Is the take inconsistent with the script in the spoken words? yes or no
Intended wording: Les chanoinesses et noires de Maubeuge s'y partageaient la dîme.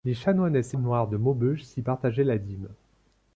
no